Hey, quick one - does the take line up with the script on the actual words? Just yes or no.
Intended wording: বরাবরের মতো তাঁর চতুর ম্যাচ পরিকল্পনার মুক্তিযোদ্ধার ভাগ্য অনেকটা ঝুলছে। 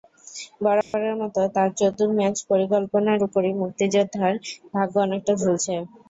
no